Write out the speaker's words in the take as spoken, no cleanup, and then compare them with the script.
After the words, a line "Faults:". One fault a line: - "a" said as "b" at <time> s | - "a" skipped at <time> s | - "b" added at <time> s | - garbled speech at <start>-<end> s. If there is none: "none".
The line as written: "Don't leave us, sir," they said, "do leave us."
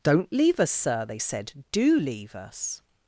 "Don't leave us, sir," they said, "do leave us."
Faults:
none